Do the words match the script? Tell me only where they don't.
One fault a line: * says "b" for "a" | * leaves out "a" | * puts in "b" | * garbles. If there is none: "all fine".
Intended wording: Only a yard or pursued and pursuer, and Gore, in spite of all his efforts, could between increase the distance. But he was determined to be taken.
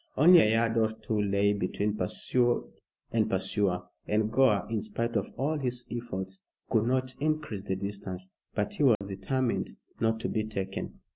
* puts in "two lay between"
* says "not" for "between"
* puts in "not"